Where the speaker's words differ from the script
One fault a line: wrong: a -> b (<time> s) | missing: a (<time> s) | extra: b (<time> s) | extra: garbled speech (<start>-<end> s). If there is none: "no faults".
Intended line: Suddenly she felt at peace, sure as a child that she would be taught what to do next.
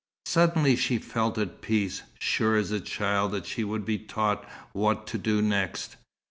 no faults